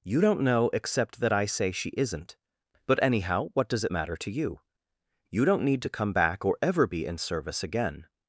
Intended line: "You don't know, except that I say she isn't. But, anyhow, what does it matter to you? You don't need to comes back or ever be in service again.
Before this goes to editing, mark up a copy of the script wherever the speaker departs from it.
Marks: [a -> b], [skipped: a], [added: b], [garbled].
"You don't know, except that I say she isn't. But, anyhow, what does it matter to you? You don't need to [comes -> come] back or ever be in service again.